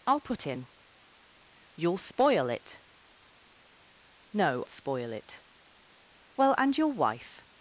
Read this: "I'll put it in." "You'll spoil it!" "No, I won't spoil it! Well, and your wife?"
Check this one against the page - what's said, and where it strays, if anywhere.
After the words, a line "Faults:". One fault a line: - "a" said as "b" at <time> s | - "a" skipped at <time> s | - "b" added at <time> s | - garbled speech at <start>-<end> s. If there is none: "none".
"I'll put in." "You'll spoil it!" "No, spoil it! Well, and your wife?"
Faults:
- "it" skipped at 0.5 s
- "I won't" skipped at 4.6 s